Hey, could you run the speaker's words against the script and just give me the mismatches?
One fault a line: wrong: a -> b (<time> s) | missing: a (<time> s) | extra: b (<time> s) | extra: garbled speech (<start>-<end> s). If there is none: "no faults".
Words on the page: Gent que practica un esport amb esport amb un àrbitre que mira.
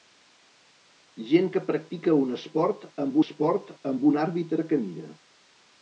no faults